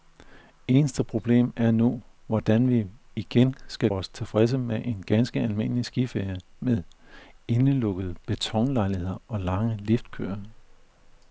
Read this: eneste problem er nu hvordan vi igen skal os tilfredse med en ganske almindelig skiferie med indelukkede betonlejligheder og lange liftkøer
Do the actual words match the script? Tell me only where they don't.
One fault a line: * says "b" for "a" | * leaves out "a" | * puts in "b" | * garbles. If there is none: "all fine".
all fine